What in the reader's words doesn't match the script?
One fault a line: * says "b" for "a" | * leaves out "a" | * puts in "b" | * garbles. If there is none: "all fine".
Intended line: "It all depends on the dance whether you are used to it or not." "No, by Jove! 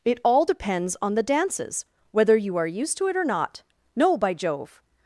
* says "dances" for "dance"